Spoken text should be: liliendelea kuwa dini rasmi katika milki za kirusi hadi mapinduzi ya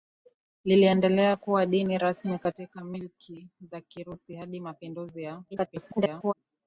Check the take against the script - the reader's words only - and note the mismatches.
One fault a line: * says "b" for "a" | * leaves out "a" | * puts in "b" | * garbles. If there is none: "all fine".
* garbles